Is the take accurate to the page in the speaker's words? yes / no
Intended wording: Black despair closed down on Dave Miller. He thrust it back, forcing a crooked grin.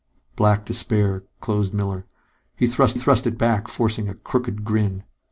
no